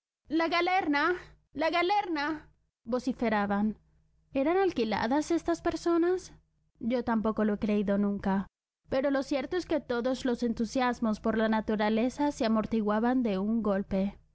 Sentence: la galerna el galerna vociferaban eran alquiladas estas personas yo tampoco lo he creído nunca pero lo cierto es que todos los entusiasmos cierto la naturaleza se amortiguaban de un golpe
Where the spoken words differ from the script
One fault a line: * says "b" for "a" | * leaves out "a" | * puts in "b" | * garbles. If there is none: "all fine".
* says "la" for "el"
* says "por" for "cierto"